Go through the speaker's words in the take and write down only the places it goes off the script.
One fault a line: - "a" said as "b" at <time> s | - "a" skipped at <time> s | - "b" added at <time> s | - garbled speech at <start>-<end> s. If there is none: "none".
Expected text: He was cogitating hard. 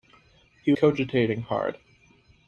- "was" skipped at 0.7 s